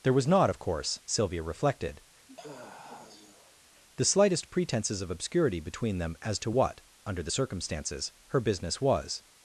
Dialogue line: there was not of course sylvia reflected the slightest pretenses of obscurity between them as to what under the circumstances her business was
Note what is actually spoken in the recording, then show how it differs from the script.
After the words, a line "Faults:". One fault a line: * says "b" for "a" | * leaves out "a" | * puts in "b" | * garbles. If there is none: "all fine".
there was not of course sylvia reflected the slightest pretenses of obscurity between them as to what under the circumstances her business was
Faults:
all fine